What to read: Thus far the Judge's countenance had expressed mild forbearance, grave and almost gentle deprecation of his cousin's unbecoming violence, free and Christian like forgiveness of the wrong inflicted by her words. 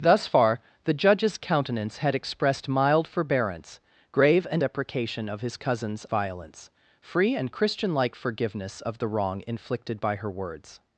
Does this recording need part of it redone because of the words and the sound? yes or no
yes